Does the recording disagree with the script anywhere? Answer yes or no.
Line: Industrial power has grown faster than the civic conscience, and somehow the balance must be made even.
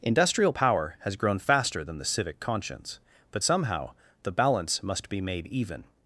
yes